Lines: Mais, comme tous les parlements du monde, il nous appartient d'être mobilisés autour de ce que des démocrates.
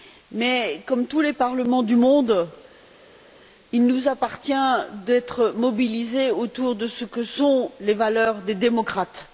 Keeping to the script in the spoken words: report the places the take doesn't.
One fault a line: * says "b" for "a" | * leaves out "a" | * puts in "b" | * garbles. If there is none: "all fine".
* puts in "sont les valeurs"